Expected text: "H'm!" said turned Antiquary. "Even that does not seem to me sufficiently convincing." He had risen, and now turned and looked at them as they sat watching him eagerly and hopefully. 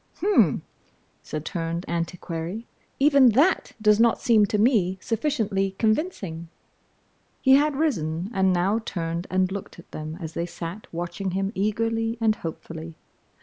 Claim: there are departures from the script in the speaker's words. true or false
false